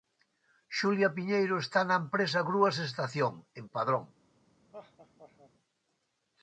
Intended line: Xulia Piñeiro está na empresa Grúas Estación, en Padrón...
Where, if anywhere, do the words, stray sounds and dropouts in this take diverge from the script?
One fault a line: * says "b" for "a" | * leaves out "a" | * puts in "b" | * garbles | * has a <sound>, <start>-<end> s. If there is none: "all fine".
* has a laugh, 4.7-5.5 s